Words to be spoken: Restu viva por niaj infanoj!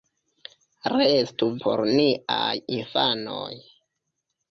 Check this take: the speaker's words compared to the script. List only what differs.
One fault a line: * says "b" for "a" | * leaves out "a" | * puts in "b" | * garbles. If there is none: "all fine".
* leaves out "viva"